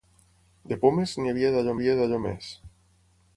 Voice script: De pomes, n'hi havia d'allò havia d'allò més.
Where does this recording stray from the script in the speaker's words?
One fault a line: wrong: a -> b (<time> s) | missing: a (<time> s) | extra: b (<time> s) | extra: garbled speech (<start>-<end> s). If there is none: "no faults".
no faults